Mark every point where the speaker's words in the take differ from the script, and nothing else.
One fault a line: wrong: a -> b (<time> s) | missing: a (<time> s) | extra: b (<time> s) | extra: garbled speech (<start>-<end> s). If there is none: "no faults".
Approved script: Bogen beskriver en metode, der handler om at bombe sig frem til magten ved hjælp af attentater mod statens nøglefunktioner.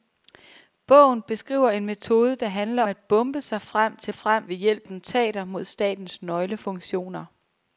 missing: om (2.8 s)
wrong: magten -> frem (4.1 s)
missing: af (4.9 s)